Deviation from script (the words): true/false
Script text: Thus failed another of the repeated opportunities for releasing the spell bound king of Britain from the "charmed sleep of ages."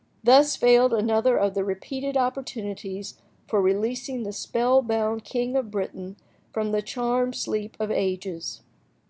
false